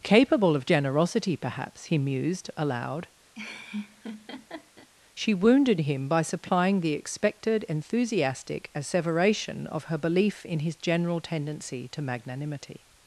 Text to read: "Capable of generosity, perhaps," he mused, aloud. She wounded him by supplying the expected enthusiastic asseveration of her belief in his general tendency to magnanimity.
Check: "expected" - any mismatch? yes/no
no